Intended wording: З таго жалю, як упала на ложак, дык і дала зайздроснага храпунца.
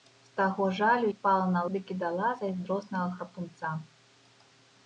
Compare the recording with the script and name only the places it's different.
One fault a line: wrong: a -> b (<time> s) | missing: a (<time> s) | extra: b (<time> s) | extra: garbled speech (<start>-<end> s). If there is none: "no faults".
missing: як (1.1 s)
missing: ложак (1.6 s)